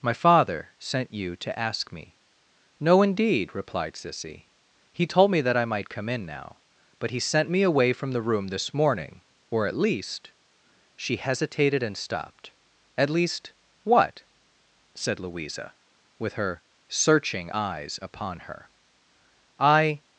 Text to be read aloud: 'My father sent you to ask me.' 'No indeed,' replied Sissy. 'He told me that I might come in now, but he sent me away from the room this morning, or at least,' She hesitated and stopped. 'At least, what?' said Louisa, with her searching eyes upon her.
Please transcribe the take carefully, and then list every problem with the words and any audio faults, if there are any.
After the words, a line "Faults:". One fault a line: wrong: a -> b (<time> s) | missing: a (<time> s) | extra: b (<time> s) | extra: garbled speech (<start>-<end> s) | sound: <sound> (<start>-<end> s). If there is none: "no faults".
'My father sent you to ask me.' 'No indeed,' replied Sissy. 'He told me that I might come in now, but he sent me away from the room this morning, or at least,' She hesitated and stopped. 'At least, what?' said Louisa, with her searching eyes upon her. 'I
Faults:
extra: I (19.6 s)